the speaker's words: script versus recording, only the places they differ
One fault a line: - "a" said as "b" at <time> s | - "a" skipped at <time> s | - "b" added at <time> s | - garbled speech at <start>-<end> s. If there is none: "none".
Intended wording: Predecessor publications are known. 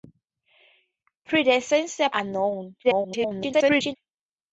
- "publications" skipped at 2.1 s
- garbled speech at 2.8-4.0 s